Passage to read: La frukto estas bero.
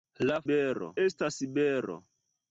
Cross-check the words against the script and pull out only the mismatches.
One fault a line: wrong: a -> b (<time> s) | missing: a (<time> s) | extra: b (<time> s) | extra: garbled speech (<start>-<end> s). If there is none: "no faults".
wrong: frukto -> bero (0.5 s)